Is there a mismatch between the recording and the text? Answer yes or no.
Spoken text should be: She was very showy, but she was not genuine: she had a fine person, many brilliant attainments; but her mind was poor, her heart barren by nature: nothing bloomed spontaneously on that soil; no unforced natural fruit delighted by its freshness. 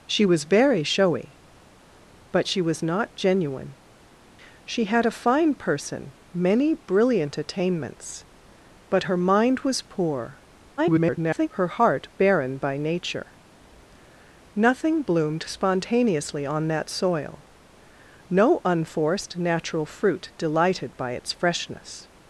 yes